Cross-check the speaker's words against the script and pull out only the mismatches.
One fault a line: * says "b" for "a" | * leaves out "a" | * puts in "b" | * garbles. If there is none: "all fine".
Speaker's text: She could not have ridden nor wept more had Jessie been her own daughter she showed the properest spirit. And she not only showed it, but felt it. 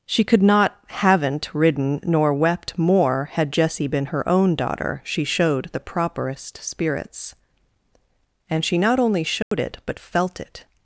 * says "haven't" for "have"
* says "spirits" for "spirit"